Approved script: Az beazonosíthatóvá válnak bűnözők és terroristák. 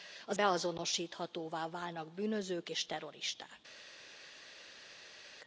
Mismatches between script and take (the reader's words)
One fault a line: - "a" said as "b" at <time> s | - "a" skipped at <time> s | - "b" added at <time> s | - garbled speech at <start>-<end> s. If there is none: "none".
none